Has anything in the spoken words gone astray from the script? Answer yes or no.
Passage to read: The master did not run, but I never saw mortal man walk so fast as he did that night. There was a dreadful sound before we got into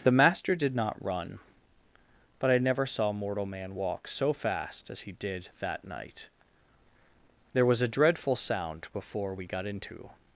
no